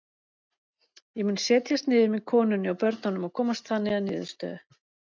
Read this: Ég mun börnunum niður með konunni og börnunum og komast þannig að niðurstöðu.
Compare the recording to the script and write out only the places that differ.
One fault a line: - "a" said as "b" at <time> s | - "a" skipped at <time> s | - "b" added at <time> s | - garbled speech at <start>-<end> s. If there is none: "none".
- "börnunum" said as "setjast" at 1.4 s